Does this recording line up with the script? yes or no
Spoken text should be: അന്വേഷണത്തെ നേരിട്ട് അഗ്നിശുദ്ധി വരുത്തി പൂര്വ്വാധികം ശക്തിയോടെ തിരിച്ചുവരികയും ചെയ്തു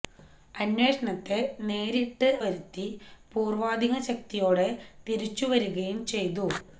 no